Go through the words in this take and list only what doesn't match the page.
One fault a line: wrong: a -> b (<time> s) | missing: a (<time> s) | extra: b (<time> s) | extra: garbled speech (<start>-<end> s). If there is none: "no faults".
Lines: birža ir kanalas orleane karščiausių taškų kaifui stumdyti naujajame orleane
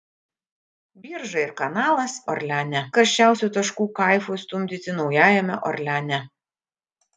no faults